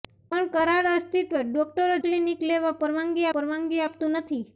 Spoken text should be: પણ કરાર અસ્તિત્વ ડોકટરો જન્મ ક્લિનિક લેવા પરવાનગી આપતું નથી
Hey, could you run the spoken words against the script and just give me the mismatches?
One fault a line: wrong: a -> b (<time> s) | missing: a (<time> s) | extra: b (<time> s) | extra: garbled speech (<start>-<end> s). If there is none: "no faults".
missing: જન્મ (1.9 s)
extra: પરવાનગી (3.3 s)